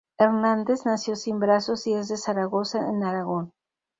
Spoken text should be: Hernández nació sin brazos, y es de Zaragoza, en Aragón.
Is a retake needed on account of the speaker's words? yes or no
no